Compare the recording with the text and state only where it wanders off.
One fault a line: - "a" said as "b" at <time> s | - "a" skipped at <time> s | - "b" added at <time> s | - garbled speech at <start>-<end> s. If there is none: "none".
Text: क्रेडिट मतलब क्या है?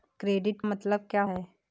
none